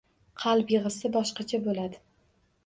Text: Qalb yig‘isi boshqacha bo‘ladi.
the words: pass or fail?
pass